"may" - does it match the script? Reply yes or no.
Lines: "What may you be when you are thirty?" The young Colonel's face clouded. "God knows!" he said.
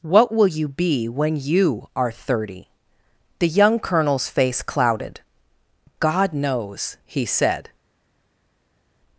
no